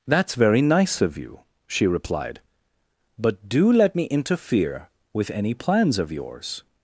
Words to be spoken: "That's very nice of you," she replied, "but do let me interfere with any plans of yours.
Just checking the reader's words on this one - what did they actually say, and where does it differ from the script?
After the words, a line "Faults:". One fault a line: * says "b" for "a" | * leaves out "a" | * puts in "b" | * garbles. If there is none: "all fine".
"That's very nice of you," she replied, "but do let me interfere with any plans of yours.
Faults:
all fine